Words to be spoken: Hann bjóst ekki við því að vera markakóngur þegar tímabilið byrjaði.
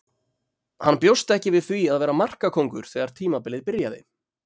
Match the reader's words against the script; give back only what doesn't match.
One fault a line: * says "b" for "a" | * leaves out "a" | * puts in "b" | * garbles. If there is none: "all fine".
all fine